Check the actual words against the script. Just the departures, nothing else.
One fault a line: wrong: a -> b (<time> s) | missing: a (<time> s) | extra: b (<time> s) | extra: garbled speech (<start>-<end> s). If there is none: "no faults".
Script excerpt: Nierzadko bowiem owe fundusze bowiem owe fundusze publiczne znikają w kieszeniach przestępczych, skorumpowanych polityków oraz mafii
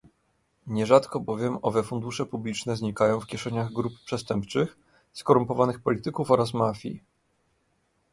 missing: bowiem owe fundusze (2.2 s)
extra: grup (3.7 s)